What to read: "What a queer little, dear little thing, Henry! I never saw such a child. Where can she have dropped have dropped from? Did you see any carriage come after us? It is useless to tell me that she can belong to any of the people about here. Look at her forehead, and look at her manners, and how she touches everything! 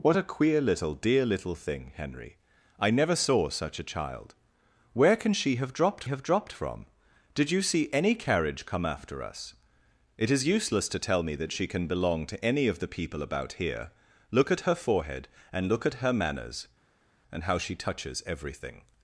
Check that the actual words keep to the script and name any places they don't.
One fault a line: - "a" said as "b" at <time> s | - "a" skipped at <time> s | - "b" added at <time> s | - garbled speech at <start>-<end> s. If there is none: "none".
none